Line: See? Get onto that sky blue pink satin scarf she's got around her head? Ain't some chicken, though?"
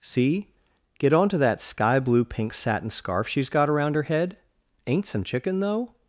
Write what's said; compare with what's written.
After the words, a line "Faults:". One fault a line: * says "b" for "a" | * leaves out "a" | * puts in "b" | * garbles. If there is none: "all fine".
See? Get onto that sky blue pink satin scarf she's got around her head? Ain't some chicken, though?"
Faults:
all fine